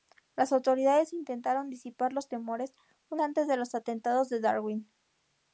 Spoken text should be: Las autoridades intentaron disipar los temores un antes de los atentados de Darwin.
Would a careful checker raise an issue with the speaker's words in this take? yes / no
no